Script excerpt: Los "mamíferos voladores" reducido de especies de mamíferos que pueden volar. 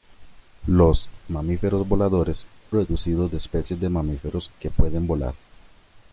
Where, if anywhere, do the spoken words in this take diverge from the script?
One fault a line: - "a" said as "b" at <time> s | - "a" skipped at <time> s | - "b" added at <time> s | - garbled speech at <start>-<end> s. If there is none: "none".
none